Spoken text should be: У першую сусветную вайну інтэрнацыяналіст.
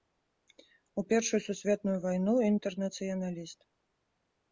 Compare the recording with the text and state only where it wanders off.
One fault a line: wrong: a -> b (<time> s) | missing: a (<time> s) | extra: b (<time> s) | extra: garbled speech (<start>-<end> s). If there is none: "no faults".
no faults